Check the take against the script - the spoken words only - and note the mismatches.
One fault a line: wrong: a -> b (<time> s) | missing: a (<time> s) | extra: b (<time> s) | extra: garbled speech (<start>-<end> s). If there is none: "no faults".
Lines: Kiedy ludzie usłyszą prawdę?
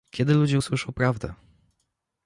no faults